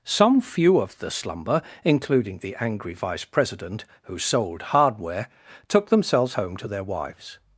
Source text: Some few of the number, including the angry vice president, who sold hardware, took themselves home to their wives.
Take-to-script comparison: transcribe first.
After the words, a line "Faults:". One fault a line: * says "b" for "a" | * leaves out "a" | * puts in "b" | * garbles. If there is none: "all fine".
Some few of the slumber, including the angry vice president, who sold hardware, took themselves home to their wives.
Faults:
* says "slumber" for "number"